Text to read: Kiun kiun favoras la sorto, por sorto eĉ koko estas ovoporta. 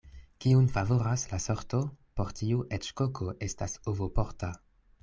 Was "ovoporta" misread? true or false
false